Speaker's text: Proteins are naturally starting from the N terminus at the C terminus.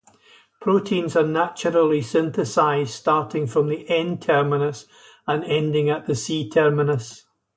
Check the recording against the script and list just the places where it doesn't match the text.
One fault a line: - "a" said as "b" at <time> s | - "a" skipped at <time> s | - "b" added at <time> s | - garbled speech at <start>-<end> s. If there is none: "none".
- "synthesized" added at 2.0 s
- "and ending" added at 5.3 s